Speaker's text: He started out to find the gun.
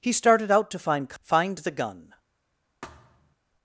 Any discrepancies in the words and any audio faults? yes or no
yes